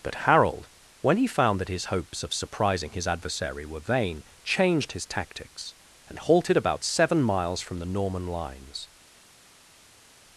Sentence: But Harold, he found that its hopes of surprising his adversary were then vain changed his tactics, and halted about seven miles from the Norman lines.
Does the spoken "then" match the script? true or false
false